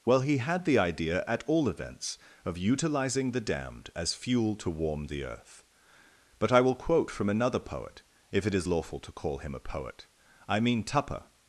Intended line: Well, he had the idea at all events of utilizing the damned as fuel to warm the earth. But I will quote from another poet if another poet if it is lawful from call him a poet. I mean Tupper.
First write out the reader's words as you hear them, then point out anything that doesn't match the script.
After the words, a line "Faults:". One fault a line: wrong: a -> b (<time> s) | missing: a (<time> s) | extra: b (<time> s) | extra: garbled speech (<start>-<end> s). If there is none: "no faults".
Well, he had the idea at all events of utilizing the damned as fuel to warm the earth. But I will quote from another poet if it is lawful to call him a poet. I mean Tupper.
Faults:
missing: another poet if (8.5 s)
wrong: from -> to (9.0 s)